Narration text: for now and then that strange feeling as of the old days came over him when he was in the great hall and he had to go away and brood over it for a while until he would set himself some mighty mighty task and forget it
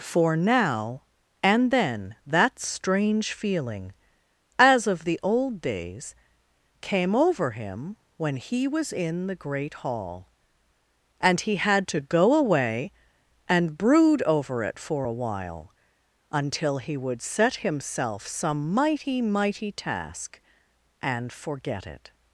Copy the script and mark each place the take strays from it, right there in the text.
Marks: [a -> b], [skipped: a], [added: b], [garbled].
for now and then that strange feeling as of the old days came over him when he was in the great hall and he had to go away and brood over it for a while until he would set himself some mighty mighty task and forget it